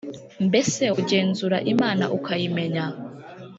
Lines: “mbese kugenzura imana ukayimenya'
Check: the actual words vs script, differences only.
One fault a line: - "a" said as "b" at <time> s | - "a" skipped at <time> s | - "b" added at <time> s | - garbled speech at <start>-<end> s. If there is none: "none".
none